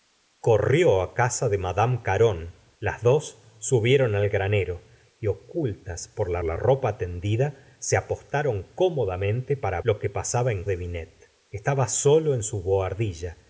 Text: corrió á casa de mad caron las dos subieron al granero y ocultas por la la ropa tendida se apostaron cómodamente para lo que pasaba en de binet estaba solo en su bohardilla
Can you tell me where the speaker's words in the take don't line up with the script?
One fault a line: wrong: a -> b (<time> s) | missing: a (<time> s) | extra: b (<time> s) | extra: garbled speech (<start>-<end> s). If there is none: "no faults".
no faults